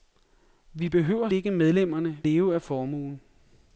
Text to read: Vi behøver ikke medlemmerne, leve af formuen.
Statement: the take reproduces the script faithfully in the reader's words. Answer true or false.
true